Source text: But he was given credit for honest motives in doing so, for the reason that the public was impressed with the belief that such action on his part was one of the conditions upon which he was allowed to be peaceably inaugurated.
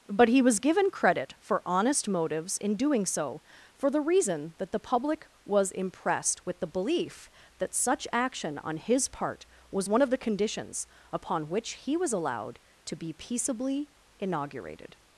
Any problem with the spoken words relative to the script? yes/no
no